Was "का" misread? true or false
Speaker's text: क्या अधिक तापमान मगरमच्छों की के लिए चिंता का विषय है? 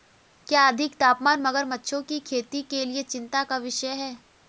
false